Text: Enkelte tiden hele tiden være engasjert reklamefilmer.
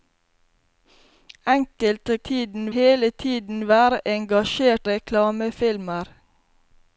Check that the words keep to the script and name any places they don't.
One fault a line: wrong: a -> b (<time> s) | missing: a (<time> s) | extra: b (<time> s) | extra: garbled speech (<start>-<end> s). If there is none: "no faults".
no faults